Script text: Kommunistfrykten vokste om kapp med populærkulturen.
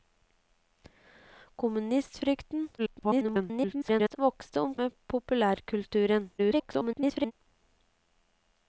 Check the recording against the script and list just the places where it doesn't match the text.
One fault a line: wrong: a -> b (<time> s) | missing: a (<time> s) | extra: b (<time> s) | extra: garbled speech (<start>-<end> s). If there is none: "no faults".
extra: garbled speech (2.8-4.2 s)
missing: kapp (4.7 s)
extra: garbled speech (6.4-7.3 s)